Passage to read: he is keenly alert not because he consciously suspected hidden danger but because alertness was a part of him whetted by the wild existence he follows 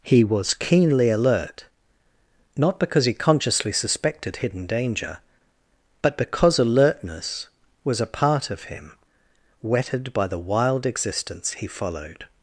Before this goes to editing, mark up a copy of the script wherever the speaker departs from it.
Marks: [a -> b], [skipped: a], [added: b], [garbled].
he [is -> was] keenly alert not because he consciously suspected hidden danger but because alertness was a part of him whetted by the wild existence he [follows -> followed]